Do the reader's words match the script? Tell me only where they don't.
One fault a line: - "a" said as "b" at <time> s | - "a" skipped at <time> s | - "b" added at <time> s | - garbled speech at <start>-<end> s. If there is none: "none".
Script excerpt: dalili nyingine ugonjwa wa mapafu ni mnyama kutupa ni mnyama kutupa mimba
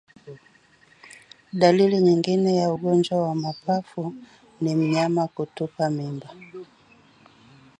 - "ya" added at 2.5 s
- "ni mnyama kutupa" skipped at 5.9 s